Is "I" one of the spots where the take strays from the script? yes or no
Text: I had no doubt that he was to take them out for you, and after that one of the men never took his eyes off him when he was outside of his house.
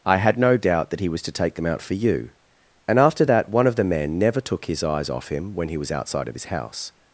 no